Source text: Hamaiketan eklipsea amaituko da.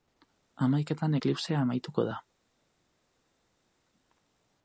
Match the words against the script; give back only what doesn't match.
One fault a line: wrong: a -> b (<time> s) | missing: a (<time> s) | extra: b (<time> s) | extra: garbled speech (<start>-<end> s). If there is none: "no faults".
no faults